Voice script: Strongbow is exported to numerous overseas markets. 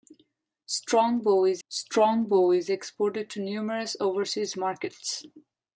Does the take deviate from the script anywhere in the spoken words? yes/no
yes